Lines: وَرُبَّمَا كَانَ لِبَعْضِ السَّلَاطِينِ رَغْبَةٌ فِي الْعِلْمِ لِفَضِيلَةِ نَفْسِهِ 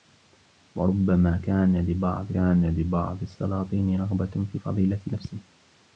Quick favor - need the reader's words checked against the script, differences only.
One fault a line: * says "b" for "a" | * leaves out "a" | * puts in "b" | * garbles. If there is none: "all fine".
* puts in "كَانَ لِبَعْضِ"
* leaves out "الْعِلْمِ"